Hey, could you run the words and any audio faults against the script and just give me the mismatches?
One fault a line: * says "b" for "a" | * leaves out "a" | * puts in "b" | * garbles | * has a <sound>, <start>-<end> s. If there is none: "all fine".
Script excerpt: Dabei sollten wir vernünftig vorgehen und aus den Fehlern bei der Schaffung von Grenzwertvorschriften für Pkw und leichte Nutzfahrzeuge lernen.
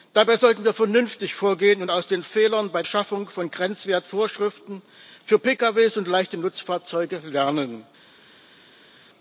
* leaves out "der"